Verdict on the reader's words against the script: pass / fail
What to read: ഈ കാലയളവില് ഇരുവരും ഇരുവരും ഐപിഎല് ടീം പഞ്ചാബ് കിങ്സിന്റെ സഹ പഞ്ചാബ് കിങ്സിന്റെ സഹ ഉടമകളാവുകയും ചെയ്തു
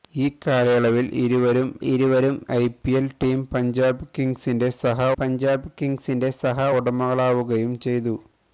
pass